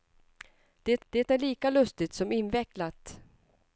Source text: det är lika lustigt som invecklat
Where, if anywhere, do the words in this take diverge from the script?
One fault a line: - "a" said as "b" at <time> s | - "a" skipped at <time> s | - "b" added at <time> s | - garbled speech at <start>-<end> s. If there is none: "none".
- "det" added at 1.1 s